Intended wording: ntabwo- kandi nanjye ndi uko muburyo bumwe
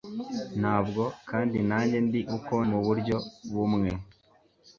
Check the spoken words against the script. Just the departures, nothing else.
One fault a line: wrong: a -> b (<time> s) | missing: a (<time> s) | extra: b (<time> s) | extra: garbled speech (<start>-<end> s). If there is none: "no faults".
no faults